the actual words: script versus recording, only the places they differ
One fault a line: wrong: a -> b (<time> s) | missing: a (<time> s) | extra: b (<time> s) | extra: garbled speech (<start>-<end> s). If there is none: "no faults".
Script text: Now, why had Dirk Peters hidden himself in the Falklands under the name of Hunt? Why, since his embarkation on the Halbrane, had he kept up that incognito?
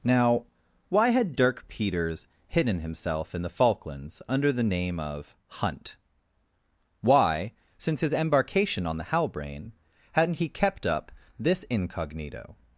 wrong: had -> hadn't (10.1 s)
wrong: that -> this (11.4 s)